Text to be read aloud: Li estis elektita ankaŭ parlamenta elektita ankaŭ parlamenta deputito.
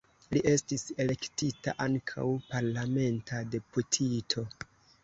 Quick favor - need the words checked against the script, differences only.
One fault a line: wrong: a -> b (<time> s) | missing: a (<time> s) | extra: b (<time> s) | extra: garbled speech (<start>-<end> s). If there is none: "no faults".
missing: elektita ankaŭ parlamenta (3.4 s)